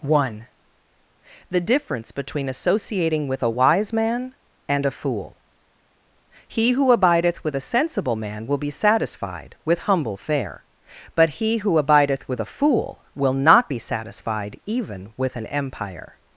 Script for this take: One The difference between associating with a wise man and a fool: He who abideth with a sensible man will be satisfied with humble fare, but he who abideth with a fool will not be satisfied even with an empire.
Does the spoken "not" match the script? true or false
true